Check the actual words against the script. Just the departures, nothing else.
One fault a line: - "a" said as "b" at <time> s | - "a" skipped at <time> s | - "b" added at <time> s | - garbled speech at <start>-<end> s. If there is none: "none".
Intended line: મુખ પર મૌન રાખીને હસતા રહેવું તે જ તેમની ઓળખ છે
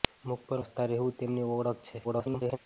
- "મૌન રાખીને" skipped at 0.6 s
- "તે" skipped at 1.2 s
- garbled speech at 2.0-2.6 s